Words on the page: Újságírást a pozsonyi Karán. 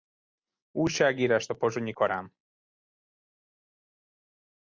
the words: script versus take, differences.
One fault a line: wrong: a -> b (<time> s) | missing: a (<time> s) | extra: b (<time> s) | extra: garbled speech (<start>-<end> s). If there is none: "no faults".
no faults